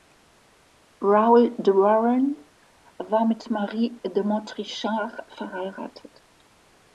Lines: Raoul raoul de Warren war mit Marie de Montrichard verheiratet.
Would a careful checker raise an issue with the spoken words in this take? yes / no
yes